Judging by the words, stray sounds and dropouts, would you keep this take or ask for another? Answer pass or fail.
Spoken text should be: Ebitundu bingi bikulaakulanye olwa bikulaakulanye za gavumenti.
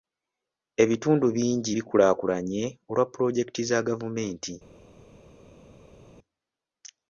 fail